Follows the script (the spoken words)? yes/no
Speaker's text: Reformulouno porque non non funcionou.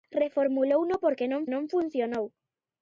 yes